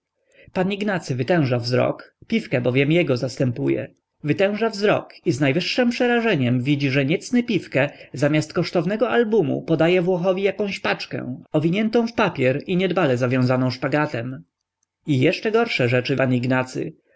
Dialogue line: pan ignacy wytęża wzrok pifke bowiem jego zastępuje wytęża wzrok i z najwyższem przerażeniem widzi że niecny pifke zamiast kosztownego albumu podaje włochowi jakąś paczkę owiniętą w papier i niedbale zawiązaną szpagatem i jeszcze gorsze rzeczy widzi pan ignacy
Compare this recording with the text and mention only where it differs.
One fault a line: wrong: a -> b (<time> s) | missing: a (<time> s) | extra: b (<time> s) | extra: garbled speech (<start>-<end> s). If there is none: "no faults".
missing: widzi (16.2 s)